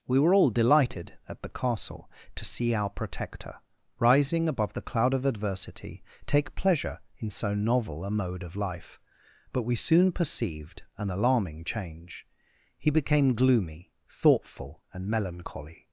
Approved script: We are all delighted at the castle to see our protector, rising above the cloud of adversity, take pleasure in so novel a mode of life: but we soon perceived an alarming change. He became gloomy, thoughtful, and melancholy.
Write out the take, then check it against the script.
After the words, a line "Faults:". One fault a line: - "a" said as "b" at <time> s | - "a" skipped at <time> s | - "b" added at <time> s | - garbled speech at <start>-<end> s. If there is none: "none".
We were all delighted at the castle to see our protector, rising above the cloud of adversity, take pleasure in so novel a mode of life: but we soon perceived an alarming change. He became gloomy, thoughtful, and melancholy.
Faults:
- "are" said as "were" at 0.2 s